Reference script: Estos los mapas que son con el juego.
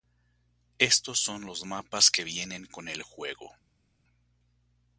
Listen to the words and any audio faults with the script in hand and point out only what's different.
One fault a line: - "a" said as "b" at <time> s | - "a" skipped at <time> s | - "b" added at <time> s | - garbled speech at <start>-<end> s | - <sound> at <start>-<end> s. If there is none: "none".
- "son" added at 1.2 s
- "son" said as "vienen" at 2.2 s